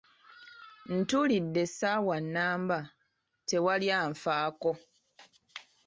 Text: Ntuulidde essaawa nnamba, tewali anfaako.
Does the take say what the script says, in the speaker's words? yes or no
yes